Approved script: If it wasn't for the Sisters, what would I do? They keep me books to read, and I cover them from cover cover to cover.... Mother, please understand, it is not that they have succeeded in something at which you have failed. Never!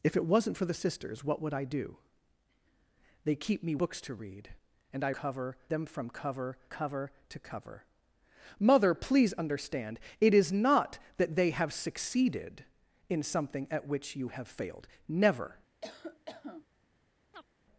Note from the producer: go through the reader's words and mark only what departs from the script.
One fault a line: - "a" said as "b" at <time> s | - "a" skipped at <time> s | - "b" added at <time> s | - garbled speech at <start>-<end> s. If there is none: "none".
none